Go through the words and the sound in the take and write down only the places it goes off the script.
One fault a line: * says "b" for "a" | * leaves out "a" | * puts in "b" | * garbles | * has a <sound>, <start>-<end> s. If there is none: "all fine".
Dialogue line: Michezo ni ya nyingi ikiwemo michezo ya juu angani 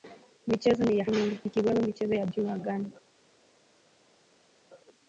all fine